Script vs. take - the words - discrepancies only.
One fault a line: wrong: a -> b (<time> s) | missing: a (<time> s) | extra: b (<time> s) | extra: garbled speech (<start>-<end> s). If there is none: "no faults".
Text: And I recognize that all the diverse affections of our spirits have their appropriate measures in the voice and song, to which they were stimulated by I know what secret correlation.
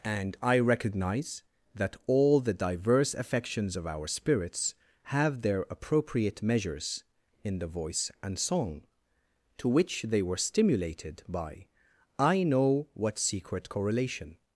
no faults